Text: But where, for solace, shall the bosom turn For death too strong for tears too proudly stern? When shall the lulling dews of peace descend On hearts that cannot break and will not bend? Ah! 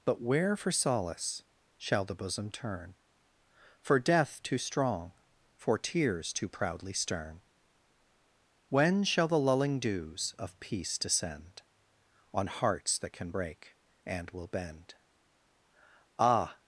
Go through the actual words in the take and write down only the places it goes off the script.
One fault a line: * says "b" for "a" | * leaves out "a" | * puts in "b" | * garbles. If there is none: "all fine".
* says "can" for "cannot"
* leaves out "not"